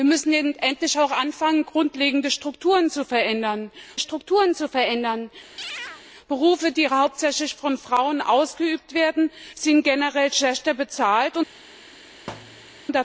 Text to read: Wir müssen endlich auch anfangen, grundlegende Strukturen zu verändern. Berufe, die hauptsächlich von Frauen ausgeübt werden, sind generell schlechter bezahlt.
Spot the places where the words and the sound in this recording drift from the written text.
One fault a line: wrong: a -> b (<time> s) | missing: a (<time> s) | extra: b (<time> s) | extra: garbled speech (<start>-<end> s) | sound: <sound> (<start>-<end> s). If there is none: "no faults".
extra: Strukturen zu verändern (4.0 s)
sound: chirp (5.6-6.0 s)
sound: thud (12.3-12.8 s)